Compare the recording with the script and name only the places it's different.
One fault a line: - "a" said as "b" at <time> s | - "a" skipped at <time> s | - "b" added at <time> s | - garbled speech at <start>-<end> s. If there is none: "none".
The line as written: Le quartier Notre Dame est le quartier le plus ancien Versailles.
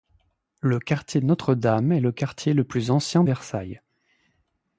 none